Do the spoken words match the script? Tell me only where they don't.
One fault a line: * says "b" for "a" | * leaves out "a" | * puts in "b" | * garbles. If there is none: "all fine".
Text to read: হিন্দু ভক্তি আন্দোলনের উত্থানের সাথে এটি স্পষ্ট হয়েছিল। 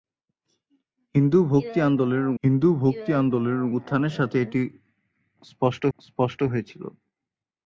* puts in "হিন্দু ভক্তি আন্দোলনের"
* puts in "স্পষ্ট"